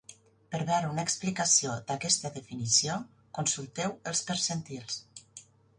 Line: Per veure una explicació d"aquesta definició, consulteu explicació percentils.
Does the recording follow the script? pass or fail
fail